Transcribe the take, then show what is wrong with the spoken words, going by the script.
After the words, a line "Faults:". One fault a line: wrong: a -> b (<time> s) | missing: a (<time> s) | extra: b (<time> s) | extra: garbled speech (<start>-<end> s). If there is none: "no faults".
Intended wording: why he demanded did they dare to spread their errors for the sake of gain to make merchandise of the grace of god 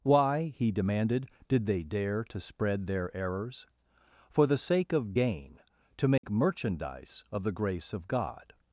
why he demanded did they dare to spread their errors for the sake of gain to make merchandise of the grace of god
Faults:
no faults